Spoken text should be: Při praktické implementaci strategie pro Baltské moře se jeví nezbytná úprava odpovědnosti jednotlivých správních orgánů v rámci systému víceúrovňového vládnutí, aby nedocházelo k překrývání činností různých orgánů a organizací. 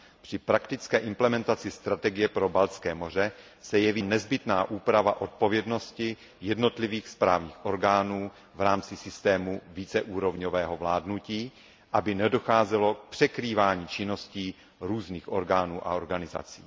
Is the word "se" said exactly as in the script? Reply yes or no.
yes